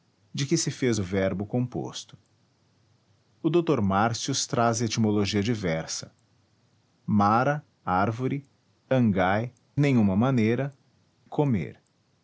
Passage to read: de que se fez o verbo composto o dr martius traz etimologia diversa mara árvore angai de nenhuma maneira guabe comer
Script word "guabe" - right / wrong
wrong